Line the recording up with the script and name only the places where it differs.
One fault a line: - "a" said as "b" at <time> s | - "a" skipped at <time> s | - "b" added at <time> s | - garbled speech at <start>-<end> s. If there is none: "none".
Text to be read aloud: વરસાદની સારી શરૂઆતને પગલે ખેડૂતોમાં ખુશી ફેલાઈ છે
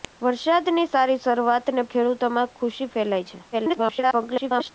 - "પગલે" skipped at 1.9 s
- garbled speech at 3.5-4.7 s